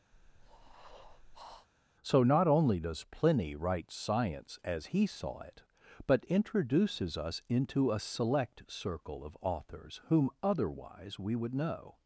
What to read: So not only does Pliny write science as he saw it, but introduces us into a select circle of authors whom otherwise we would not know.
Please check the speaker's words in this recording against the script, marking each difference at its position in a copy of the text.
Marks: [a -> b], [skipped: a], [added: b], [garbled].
So not only does Pliny write science as he saw it, but introduces us into a select circle of authors whom otherwise we would [skipped: not] know.